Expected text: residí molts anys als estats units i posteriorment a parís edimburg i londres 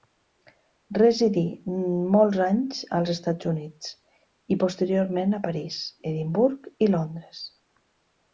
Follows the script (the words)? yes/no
yes